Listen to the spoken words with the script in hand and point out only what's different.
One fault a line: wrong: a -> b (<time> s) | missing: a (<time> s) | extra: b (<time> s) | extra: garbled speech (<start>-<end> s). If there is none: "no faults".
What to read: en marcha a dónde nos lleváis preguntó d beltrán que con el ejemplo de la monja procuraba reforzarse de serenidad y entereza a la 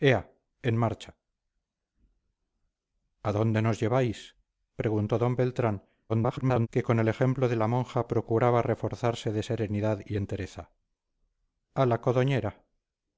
extra: garbled speech (6.1-6.7 s)